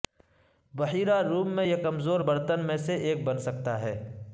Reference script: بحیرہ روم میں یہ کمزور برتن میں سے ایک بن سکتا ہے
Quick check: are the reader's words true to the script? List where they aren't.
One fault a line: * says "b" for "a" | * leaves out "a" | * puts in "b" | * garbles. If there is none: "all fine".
all fine